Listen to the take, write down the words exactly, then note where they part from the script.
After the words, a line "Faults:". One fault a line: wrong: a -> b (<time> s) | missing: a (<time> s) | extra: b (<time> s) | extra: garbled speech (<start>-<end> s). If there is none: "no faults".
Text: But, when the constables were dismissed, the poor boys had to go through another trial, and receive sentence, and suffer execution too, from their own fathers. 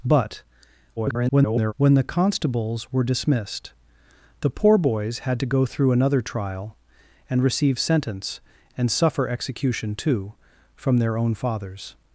But, [garbled] when the constables were dismissed, the poor boys had to go through another trial, and receive sentence, and suffer execution too, from their own fathers.
Faults:
extra: garbled speech (1.0-1.7 s)